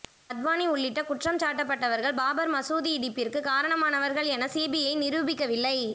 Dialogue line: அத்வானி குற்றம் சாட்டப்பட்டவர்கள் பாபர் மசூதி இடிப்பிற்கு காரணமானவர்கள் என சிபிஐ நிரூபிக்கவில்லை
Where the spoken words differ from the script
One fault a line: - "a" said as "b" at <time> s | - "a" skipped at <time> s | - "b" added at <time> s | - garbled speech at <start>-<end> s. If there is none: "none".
- "உள்ளிட்ட" added at 0.7 s